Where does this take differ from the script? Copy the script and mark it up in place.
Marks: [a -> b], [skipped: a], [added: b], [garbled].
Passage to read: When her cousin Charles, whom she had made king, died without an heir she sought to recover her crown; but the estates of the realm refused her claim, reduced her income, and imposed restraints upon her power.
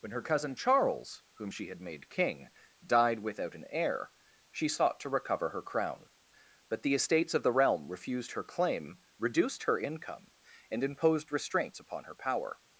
When her cousin Charles, whom she had made king, died without an heir she sought to recover her crown; but the estates of the realm refused her claim, reduced her income, and imposed restraints upon her power.